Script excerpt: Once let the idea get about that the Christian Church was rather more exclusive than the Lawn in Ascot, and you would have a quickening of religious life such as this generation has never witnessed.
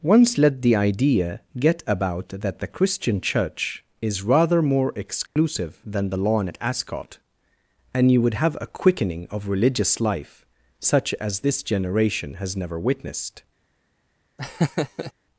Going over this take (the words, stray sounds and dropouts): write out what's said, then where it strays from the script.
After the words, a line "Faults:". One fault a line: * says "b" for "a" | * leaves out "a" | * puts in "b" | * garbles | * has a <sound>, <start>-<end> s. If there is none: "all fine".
Once let the idea get about that the Christian Church is rather more exclusive than the Lawn at Ascot, and you would have a quickening of religious life such as this generation has never witnessed.
Faults:
* says "is" for "was"
* has a dropout, 5.3-5.4 s
* says "at" for "in"
* has a laugh, 14.4-15.1 s